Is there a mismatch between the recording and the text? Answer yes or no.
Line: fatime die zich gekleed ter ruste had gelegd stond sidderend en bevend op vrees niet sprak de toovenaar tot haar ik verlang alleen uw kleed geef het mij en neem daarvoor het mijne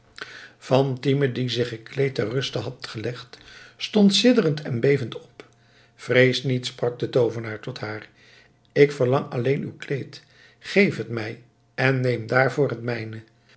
no